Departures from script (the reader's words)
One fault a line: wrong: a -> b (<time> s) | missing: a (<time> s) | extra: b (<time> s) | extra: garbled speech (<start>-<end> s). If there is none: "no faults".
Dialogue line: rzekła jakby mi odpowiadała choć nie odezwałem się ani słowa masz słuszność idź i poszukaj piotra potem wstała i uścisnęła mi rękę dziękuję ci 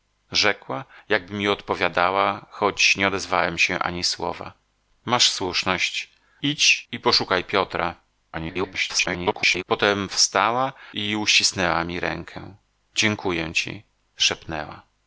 extra: garbled speech (8.3-9.6 s)